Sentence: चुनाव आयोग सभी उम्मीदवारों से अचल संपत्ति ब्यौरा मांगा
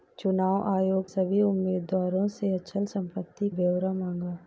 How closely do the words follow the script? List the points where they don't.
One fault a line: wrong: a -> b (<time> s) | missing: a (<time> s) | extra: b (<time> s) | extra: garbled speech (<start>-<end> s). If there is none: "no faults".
no faults